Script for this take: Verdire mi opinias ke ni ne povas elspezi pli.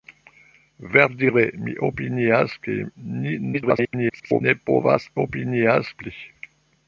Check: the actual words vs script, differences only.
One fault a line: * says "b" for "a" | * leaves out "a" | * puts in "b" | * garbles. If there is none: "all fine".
* garbles
* says "opinias" for "elspezi"